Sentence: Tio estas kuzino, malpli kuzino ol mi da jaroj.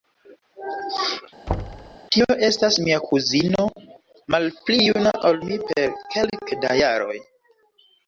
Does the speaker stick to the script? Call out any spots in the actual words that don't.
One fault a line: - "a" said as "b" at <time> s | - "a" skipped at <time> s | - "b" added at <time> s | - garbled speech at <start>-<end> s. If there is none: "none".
- "mia" added at 2.9 s
- "kuzino" said as "juna" at 4.9 s
- "per kelke" added at 5.7 s